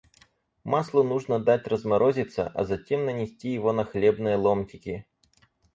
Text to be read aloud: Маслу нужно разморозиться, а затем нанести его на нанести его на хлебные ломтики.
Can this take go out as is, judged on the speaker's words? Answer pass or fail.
fail